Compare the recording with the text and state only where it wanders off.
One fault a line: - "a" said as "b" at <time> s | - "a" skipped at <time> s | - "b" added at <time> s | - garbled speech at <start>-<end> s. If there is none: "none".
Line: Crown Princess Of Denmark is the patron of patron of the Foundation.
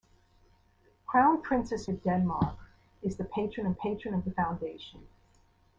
none